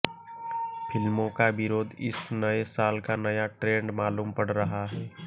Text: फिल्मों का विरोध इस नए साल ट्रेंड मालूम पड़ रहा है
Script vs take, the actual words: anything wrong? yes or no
yes